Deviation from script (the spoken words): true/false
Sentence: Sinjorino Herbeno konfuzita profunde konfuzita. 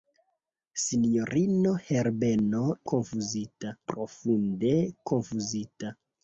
false